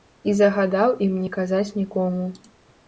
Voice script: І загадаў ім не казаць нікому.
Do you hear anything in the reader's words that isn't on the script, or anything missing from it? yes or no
no